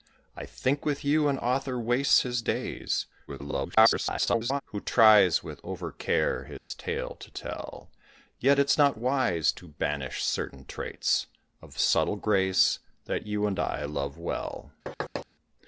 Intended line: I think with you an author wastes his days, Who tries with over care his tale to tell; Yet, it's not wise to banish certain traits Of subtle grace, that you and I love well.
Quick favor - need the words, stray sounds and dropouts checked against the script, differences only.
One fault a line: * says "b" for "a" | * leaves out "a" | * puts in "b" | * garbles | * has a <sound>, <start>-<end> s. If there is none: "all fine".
* garbles
* has a dropout, 6.6-6.7 s
* has a thud, 14.9-15.3 s